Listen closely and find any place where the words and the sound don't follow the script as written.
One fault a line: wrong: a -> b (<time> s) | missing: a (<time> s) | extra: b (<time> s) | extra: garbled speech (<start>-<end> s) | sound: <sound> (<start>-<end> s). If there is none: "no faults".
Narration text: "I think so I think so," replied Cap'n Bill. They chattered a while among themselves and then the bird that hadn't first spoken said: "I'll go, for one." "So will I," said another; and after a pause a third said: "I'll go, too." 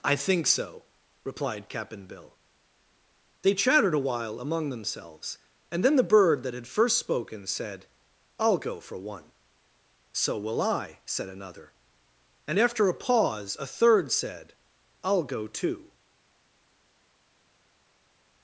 missing: I think so (0.8 s)
wrong: hadn't -> had (6.5 s)